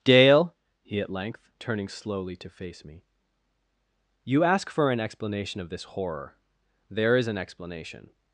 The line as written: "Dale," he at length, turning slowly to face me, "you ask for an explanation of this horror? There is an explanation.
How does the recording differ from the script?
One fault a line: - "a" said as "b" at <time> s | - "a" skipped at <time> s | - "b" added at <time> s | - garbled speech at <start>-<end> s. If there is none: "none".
none